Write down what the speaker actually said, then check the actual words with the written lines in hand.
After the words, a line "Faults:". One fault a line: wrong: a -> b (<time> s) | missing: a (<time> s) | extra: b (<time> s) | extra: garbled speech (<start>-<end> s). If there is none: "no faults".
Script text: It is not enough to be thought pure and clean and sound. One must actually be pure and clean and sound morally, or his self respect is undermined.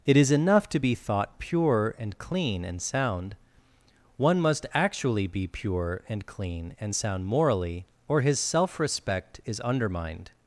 It is enough to be thought pure and clean and sound. One must actually be pure and clean and sound morally, or his self respect is undermined.
Faults:
missing: not (0.3 s)